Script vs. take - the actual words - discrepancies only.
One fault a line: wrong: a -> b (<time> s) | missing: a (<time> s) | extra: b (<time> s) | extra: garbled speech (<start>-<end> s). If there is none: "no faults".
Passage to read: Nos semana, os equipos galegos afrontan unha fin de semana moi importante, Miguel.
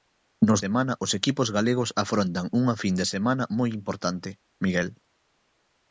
no faults